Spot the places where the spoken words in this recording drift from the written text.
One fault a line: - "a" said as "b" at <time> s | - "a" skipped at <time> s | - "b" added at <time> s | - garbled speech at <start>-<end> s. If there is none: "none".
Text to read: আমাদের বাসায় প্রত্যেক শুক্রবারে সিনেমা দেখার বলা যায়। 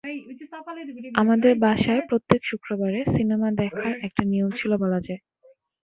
- "একটা নিয়ম ছিল" added at 4.1 s